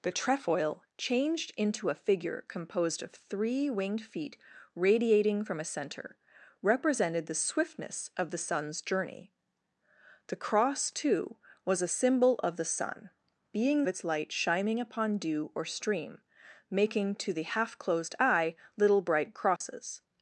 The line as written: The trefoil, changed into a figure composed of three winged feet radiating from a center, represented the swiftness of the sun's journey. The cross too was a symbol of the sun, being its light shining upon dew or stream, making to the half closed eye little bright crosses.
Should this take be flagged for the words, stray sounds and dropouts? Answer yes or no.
yes